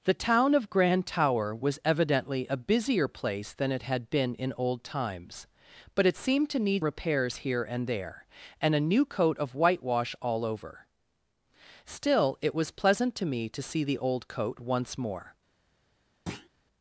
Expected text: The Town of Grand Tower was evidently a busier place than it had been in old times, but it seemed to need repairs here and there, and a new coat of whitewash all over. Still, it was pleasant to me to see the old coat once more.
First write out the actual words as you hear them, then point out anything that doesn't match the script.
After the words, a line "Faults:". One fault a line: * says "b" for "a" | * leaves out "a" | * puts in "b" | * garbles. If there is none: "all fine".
The Town of Grand Tower was evidently a busier place than it had been in old times, but it seemed to need repairs here and there, and a new coat of whitewash all over. Still, it was pleasant to me to see the old coat once more.
Faults:
all fine